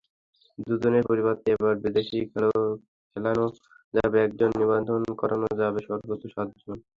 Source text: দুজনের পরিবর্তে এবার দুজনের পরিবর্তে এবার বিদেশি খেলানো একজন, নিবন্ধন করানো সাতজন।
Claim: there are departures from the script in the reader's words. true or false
true